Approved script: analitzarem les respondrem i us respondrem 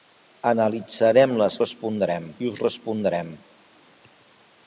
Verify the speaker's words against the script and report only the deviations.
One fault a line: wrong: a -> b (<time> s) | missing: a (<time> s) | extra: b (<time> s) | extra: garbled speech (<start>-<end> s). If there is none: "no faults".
no faults